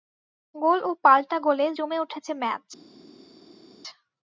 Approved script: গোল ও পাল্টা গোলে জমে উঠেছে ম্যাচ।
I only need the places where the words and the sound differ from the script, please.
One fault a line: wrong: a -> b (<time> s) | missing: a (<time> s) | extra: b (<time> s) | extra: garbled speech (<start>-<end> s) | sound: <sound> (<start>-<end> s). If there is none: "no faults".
no faults